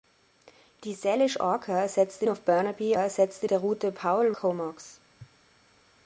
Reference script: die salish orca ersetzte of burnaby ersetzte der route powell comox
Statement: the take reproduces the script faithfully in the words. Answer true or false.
true